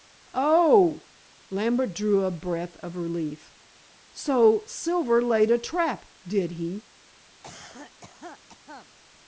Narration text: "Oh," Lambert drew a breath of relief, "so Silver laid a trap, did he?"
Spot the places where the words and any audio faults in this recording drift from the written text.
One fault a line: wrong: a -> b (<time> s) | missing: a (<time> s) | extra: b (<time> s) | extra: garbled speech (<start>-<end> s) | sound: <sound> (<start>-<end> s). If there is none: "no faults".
sound: cough (7.4-8.9 s)